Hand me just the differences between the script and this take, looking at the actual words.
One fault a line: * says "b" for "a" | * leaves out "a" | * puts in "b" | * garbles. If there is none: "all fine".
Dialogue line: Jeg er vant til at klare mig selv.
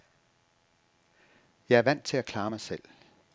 all fine